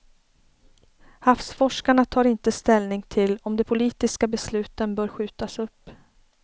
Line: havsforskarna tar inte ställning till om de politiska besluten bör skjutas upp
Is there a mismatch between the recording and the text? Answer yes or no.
no